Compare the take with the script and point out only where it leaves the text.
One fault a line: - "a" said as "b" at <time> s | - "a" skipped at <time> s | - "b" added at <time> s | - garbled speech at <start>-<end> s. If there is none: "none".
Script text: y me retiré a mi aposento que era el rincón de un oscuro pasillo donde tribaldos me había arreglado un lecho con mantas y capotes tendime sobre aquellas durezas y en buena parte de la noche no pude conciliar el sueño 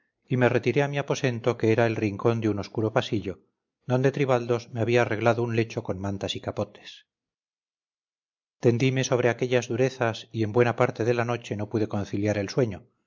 none